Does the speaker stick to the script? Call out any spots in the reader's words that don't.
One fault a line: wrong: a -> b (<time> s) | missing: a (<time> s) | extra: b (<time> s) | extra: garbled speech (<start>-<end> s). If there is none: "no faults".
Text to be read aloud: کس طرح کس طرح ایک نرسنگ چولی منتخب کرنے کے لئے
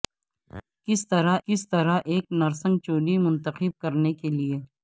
no faults